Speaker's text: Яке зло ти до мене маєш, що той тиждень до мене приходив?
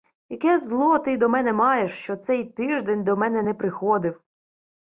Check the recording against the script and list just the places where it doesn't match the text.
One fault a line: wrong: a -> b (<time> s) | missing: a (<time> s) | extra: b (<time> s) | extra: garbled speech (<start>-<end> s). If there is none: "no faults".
wrong: той -> цей (2.1 s)
extra: не (3.4 s)